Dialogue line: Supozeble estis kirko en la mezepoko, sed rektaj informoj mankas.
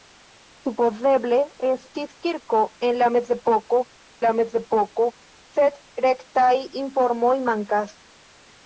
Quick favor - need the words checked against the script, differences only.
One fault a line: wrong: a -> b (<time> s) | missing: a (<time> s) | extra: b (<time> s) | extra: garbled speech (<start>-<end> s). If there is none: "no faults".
extra: la mezepoko (4.2 s)